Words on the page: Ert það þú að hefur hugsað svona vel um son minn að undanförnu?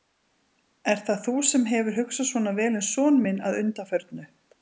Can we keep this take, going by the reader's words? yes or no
no